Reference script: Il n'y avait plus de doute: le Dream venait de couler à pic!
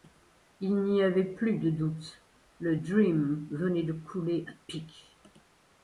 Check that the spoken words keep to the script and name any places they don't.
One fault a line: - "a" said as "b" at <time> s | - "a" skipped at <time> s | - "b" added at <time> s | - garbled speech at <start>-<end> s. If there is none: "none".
none